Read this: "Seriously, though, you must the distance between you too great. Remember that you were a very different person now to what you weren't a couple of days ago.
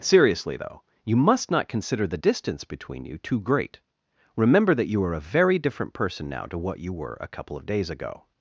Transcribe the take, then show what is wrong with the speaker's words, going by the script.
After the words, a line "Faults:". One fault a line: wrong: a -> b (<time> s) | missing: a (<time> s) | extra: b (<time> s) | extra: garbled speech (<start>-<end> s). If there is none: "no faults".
"Seriously, though, you must not consider the distance between you too great. Remember that you are a very different person now to what you were a couple of days ago.
Faults:
extra: not consider (1.5 s)
wrong: were -> are (5.0 s)
wrong: weren't -> were (6.9 s)